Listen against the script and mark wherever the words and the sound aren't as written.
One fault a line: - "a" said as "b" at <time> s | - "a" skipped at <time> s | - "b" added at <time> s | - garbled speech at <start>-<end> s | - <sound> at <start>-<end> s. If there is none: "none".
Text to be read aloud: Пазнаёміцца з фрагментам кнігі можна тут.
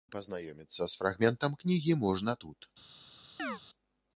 - chirp at 3.4-3.6 s